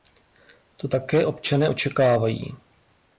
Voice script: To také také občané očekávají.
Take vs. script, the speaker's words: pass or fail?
fail